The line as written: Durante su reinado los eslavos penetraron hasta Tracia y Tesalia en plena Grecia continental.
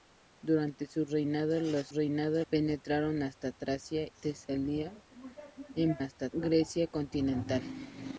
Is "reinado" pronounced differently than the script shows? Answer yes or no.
no